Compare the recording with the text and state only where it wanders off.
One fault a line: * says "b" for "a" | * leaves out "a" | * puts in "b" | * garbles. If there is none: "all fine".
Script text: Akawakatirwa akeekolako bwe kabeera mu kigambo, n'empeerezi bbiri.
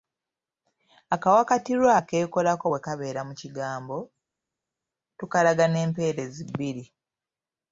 * puts in "tukalaga"